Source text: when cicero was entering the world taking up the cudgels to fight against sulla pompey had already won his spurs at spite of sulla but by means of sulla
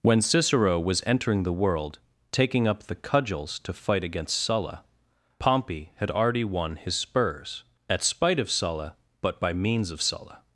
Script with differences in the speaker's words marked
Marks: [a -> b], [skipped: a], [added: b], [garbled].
when cicero was entering the world taking up the cudgels to fight against sulla pompey had already won his spurs at spite of sulla but by means of sulla